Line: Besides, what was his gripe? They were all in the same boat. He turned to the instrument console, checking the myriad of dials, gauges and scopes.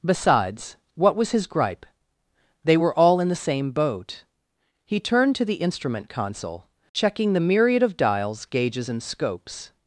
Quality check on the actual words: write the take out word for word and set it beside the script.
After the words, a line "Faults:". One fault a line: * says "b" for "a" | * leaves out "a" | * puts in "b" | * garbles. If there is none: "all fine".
Besides, what was his gripe? They were all in the same boat. He turned to the instrument console, checking the myriad of dials, gauges and scopes.
Faults:
all fine